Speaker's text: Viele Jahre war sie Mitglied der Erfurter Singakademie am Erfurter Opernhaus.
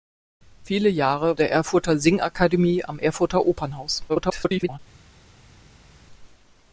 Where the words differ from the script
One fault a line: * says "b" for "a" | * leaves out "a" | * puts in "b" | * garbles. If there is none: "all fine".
* leaves out "war sie Mitglied"
* garbles